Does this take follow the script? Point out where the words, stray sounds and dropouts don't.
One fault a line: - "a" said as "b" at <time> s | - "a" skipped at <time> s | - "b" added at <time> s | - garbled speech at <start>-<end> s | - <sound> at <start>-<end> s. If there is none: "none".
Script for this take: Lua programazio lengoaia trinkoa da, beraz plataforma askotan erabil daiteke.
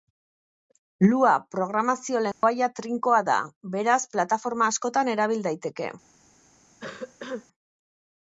- dropout at 2.3-2.4 s
- cough at 6.8-7.5 s